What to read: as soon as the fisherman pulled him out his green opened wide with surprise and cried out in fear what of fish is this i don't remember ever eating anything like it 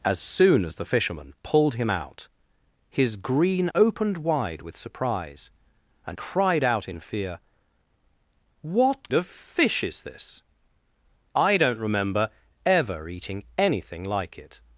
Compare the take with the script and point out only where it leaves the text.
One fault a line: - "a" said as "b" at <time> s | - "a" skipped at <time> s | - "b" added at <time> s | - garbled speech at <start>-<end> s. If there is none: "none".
none